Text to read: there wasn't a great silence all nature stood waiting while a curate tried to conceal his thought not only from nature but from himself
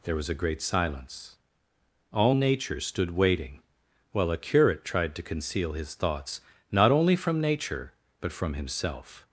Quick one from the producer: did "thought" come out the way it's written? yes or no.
no